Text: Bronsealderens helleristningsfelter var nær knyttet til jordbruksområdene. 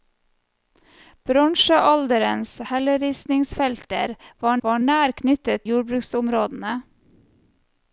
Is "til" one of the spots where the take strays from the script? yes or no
yes